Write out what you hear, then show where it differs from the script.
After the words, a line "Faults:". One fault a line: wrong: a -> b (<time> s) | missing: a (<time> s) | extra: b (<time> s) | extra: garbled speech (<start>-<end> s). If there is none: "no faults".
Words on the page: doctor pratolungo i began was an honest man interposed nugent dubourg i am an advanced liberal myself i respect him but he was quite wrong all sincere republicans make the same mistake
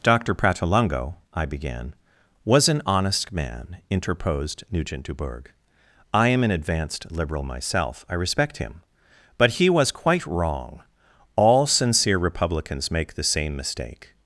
doctor pratolungo i began was an honest man interposed nugent dubourg i am an advanced liberal myself i respect him but he was quite wrong all sincere republicans make the same mistake
Faults:
no faults